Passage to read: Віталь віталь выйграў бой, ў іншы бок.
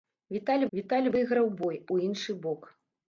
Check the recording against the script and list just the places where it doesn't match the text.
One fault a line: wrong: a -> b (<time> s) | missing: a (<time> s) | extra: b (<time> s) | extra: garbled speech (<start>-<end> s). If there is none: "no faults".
no faults